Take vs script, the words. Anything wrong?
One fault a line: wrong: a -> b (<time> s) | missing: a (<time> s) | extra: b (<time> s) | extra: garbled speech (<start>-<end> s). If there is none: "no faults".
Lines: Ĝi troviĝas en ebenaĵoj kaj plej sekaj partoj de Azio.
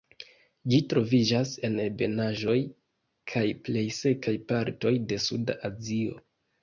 extra: Suda (5.3 s)